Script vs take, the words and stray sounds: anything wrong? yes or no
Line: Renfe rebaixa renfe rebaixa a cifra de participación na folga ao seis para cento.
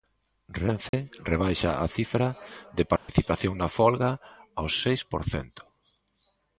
yes